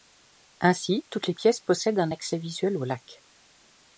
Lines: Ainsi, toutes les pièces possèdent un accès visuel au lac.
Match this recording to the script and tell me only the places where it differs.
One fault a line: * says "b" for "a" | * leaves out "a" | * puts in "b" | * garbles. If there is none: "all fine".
all fine